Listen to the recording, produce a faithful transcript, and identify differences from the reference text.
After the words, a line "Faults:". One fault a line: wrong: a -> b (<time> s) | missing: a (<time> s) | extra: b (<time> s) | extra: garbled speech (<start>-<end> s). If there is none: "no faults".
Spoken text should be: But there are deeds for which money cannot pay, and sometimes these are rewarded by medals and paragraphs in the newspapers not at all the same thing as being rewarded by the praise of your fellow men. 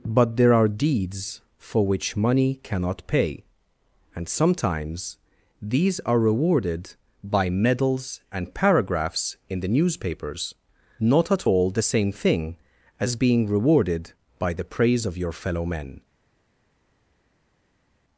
But there are deeds for which money cannot pay, and sometimes these are rewarded by medals and paragraphs in the newspapers not at all the same thing as being rewarded by the praise of your fellow men.
Faults:
no faults